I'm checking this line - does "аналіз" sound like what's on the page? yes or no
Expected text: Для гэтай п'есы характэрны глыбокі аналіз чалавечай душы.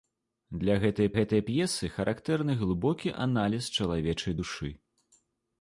yes